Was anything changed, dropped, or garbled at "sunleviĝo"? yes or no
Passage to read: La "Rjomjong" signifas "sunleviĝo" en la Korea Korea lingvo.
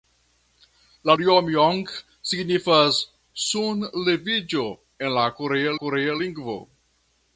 no